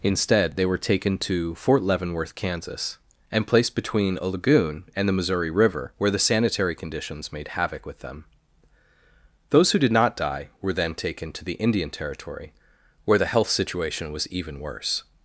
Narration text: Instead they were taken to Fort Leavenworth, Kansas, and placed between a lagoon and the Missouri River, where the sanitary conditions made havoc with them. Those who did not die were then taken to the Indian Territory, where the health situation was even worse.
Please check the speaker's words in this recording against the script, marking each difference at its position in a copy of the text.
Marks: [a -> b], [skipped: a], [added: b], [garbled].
Instead they were taken to Fort Leavenworth, Kansas, and placed between a lagoon and the Missouri River, where the sanitary conditions made havoc with them. Those who did not die were then taken to the Indian Territory, where the health situation was even worse.